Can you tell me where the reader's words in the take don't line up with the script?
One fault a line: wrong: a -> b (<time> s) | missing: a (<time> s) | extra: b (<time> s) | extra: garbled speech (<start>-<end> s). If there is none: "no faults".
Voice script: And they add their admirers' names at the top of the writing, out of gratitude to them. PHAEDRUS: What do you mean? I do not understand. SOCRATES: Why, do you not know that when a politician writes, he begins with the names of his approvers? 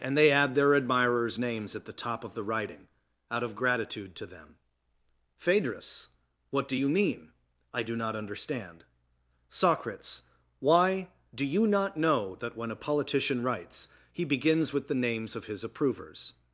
no faults